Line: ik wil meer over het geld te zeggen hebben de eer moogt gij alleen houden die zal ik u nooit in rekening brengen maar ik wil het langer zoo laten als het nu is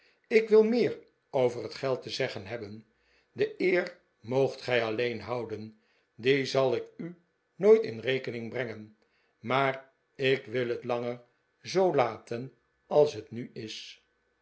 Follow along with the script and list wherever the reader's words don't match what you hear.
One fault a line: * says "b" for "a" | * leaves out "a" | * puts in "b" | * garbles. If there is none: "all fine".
all fine